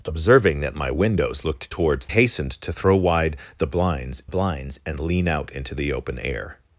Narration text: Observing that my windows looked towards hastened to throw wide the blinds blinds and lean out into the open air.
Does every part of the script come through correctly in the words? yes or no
yes